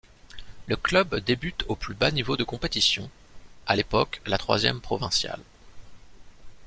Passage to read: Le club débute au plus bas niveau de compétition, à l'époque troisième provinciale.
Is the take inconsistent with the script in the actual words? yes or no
yes